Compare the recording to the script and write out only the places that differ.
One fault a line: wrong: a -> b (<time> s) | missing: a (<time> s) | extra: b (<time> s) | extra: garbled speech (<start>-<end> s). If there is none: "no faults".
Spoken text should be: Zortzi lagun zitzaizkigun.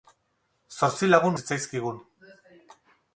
no faults